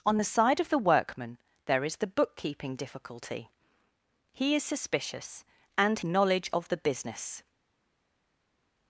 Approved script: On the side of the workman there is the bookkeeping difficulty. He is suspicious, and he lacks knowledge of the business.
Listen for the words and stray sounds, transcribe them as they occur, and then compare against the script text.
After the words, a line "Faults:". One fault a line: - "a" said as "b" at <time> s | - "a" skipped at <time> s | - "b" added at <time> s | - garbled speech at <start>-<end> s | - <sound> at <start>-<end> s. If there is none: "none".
On the side of the workman there is the bookkeeping difficulty. He is suspicious, and knowledge of the business.
Faults:
- "he lacks" skipped at 6.0 s